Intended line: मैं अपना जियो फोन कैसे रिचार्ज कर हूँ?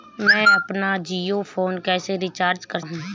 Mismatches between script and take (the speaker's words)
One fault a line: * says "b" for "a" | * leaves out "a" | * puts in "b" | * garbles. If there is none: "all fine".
all fine